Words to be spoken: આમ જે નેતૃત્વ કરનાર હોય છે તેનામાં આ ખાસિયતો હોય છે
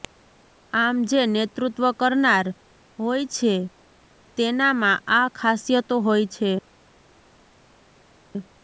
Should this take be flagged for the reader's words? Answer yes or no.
no